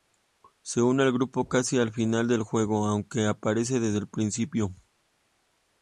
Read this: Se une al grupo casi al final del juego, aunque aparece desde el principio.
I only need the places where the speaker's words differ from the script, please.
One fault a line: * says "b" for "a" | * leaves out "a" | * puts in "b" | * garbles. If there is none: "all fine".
all fine